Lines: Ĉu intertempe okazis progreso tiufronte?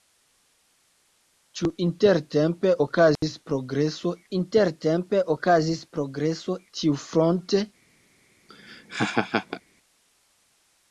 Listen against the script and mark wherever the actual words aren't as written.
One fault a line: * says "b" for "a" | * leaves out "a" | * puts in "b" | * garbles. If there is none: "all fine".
* puts in "intertempe okazis progreso"